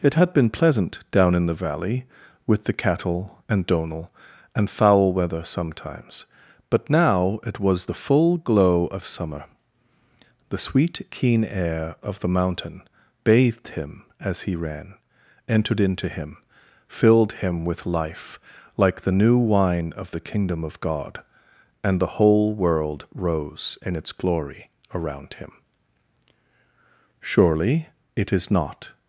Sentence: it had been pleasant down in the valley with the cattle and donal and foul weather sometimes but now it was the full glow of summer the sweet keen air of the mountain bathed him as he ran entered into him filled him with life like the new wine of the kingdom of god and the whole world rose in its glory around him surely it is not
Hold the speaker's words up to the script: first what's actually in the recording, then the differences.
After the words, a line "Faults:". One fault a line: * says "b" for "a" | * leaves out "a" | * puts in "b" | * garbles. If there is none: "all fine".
it had been pleasant down in the valley with the cattle and donal and foul weather sometimes but now it was the full glow of summer the sweet keen air of the mountain bathed him as he ran entered into him filled him with life like the new wine of the kingdom of god and the whole world rose in its glory around him surely it is not
Faults:
all fine